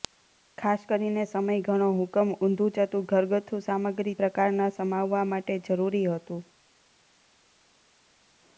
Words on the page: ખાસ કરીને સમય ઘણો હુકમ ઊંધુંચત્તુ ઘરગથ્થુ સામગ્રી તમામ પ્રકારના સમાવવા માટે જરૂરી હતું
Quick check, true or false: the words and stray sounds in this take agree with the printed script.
false